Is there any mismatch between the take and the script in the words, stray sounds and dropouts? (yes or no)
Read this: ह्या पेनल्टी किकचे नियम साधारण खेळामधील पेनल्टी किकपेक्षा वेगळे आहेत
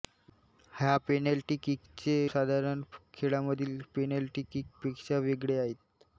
yes